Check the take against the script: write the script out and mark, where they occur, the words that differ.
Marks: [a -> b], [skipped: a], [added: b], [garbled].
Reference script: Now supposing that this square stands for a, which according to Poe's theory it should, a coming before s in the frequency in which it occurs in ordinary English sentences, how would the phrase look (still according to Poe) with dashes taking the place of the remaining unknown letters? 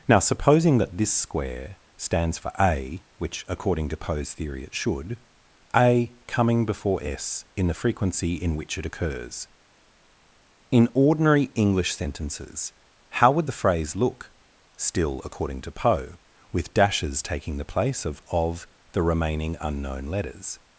Now supposing that this square stands for a, which according to Poe's theory it should, a coming before s in the frequency in which it occurs in ordinary English sentences, how would the phrase look (still according to Poe) with dashes taking the place of [added: of] the remaining unknown letters?